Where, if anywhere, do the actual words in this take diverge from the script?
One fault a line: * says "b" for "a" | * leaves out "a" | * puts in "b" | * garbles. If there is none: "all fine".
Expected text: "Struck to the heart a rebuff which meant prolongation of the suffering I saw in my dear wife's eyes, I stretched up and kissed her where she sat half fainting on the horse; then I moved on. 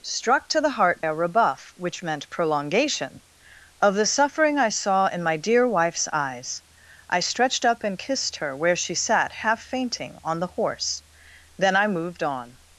all fine